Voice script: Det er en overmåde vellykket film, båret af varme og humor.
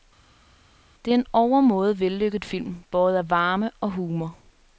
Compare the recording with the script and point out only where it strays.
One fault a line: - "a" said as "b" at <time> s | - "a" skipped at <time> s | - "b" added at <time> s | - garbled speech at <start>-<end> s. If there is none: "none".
none